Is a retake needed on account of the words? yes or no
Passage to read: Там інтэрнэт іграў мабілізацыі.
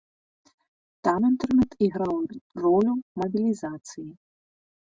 yes